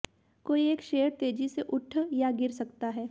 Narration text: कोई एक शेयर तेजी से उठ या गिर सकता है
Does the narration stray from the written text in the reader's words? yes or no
no